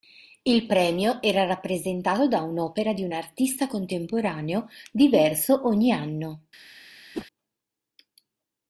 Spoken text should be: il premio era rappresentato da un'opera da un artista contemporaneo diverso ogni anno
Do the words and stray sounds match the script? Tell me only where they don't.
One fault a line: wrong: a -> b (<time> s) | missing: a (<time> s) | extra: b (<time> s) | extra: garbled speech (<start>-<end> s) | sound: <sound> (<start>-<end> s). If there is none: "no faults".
wrong: da -> di (2.9 s)
sound: whoosh (7.1-7.3 s)